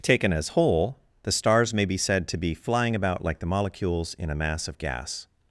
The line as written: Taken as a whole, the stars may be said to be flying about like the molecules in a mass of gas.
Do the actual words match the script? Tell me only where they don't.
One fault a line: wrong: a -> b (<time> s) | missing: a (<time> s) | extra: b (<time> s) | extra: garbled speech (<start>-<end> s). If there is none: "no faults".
missing: a (0.5 s)